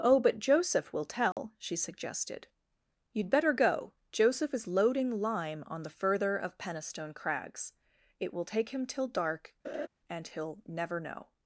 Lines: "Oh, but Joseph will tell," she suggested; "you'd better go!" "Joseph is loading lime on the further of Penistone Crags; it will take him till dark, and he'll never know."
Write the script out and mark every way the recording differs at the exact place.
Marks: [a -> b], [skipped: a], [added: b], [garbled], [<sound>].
"Oh, but Joseph will tell," [dropout] she suggested; "you'd better go!" "Joseph is loading lime on the further of Penistone Crags; it will take him till dark, [laugh] and he'll never know."